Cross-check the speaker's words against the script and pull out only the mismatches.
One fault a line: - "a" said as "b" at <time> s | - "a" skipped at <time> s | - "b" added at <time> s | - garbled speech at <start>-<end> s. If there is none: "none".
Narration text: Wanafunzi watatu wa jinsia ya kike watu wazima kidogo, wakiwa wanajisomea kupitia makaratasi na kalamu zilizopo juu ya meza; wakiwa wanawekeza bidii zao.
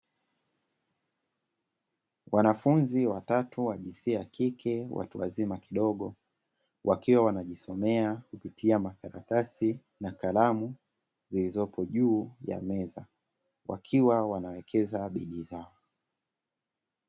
none